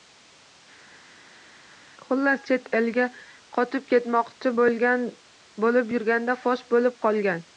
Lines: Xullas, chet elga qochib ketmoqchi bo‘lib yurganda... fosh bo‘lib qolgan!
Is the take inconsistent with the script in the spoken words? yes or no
no